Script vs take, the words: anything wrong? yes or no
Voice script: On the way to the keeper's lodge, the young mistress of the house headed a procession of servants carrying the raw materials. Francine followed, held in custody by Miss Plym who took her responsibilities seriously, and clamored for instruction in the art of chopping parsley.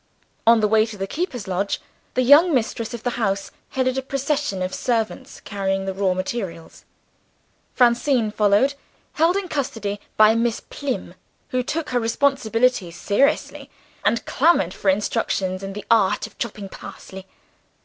no